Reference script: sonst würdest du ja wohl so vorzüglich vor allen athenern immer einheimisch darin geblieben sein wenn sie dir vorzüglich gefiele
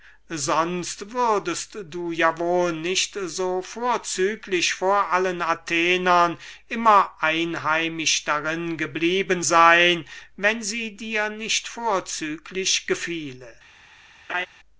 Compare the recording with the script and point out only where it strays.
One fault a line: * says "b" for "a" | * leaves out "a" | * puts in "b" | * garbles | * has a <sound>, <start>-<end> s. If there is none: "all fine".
* puts in "nicht"
* puts in "nicht"
* has a laugh, 14.3-14.5 s